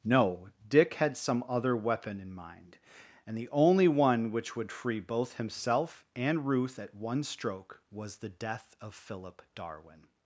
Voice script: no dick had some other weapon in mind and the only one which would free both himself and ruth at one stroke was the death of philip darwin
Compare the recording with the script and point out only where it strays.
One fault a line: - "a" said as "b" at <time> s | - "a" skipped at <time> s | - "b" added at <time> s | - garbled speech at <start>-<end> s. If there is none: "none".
none